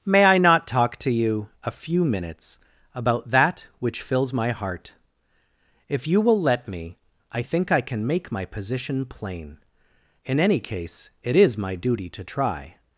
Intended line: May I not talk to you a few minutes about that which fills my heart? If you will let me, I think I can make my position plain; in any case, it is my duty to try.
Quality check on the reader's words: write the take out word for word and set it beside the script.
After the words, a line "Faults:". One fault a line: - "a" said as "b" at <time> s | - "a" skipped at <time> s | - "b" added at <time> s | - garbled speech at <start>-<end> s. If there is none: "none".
May I not talk to you a few minutes about that which fills my heart? If you will let me, I think I can make my position plain; in any case, it is my duty to try.
Faults:
none